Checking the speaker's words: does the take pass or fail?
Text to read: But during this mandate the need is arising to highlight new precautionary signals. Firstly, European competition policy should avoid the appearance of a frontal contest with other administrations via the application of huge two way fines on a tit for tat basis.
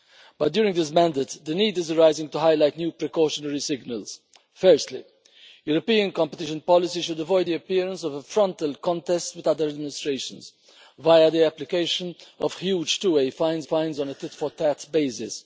fail